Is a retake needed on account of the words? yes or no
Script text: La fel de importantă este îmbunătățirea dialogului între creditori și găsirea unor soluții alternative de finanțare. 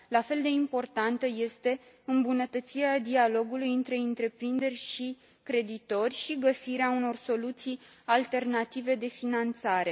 yes